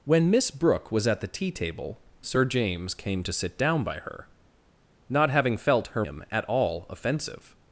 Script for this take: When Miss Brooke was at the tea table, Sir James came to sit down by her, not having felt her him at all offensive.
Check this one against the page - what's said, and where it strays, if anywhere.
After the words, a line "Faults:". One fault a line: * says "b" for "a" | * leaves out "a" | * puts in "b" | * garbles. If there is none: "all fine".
When Miss Brooke was at the tea table, Sir James came to sit down by her, not having felt her him at all offensive.
Faults:
all fine